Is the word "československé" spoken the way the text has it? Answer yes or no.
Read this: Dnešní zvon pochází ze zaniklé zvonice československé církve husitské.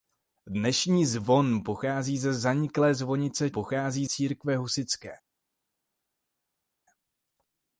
no